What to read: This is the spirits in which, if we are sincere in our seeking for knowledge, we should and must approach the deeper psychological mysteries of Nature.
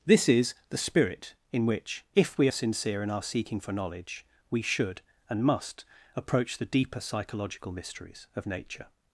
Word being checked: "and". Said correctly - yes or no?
yes